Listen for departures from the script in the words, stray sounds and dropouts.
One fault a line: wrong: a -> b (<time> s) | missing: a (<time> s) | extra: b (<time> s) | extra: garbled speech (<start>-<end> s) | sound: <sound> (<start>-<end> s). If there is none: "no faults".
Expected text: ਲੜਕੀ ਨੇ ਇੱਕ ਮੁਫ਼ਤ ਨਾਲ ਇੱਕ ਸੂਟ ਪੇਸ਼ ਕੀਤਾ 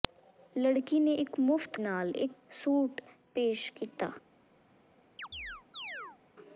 sound: chirp (5.2-6.2 s)